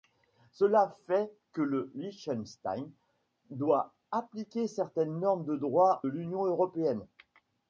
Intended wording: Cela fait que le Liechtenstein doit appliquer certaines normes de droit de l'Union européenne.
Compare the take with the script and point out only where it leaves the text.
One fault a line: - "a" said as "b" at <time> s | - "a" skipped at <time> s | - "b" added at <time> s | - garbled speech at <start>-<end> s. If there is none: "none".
- "de" skipped at 6.0 s